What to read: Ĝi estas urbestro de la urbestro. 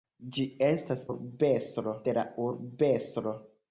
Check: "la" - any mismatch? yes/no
no